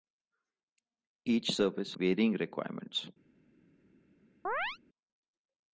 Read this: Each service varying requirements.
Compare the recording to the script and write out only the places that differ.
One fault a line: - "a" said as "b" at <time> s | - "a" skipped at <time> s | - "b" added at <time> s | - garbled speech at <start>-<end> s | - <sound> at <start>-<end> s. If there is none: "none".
- chirp at 4.4-4.8 s